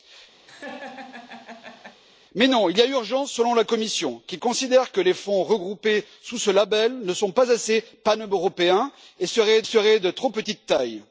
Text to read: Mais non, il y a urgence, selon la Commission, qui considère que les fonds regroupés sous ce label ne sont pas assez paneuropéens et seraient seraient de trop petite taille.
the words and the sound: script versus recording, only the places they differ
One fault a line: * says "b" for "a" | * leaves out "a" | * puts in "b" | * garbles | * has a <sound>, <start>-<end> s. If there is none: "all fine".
* has a laugh, 0.5-2.0 s